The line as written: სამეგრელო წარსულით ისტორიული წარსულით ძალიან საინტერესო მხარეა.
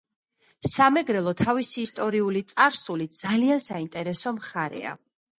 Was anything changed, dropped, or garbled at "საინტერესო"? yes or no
no